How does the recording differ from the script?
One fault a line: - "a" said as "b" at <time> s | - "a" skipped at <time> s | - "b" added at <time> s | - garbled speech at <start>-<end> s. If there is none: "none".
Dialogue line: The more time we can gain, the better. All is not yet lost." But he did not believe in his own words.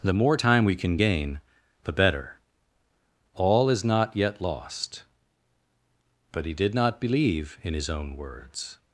none